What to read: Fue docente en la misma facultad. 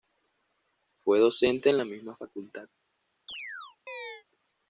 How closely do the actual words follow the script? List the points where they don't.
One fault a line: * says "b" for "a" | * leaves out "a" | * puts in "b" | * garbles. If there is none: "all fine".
all fine